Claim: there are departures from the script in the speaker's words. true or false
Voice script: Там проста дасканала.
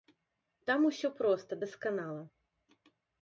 true